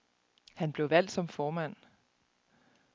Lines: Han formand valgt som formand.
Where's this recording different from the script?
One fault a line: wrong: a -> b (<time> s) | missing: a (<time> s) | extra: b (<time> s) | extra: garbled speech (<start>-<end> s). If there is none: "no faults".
wrong: formand -> blev (0.7 s)